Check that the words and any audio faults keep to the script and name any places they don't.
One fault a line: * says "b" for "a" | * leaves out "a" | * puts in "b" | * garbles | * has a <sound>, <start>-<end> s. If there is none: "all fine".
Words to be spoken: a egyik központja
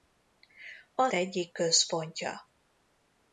all fine